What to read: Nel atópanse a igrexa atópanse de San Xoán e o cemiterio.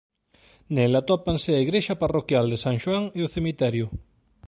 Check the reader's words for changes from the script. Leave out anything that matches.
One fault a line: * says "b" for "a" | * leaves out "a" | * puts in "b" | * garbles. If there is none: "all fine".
* says "parroquial" for "atópanse"